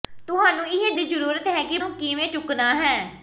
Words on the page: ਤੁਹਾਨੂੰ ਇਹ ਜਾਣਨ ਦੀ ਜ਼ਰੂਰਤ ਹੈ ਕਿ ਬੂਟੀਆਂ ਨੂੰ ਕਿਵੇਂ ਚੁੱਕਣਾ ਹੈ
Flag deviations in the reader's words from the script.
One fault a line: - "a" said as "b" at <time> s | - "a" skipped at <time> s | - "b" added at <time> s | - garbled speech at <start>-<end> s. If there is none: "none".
- "ਜਾਣਨ" skipped at 0.9 s
- "ਬੂਟੀਆਂ" skipped at 1.8 s